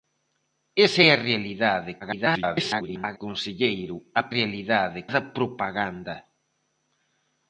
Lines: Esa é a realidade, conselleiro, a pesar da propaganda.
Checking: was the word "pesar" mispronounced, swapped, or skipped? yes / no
yes